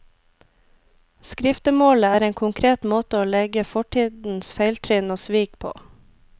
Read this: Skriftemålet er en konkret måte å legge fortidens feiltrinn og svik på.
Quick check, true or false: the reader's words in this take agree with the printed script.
true